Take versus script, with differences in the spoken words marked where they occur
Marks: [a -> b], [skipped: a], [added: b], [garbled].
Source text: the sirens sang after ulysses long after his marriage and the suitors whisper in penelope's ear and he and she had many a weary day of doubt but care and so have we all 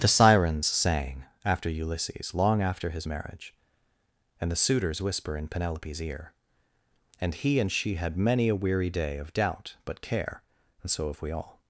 the sirens sang after ulysses long after his marriage and the suitors whisper in penelope's ear and he and she had many a weary day of doubt but care and so have we all